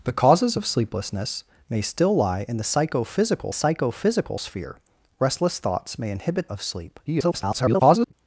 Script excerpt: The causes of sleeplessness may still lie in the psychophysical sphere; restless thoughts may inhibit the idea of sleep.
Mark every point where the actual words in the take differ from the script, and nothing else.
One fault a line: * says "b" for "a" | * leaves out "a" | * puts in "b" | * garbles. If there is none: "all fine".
* puts in "psychophysical"
* leaves out "the idea"
* garbles